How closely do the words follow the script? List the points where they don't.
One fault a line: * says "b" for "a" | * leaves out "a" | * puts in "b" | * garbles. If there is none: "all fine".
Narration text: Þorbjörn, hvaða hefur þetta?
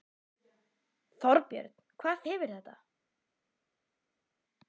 all fine